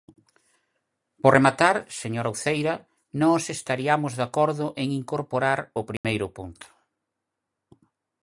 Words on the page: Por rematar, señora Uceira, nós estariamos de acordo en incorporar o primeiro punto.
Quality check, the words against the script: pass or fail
pass